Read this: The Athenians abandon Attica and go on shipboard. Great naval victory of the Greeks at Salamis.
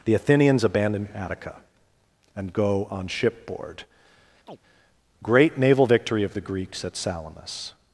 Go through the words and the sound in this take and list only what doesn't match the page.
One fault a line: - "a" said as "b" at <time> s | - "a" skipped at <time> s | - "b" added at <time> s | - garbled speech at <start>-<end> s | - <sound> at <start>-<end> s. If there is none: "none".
- chirp at 4.5-4.6 s